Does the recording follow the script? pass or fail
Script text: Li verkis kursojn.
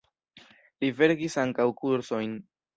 fail